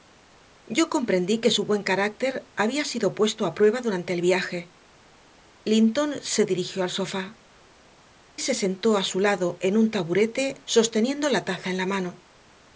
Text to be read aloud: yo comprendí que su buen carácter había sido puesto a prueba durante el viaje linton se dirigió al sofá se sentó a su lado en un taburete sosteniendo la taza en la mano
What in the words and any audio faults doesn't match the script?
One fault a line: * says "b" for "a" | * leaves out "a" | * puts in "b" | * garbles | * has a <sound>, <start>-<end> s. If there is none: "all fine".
all fine